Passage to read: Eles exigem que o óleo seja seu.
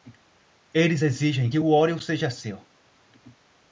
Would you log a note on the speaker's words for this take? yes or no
no